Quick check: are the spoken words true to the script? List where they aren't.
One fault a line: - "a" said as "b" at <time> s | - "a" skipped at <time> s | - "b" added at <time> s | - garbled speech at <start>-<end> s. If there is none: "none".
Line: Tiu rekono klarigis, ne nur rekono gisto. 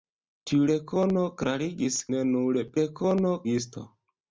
none